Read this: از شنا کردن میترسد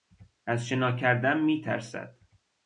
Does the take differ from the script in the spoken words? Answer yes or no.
no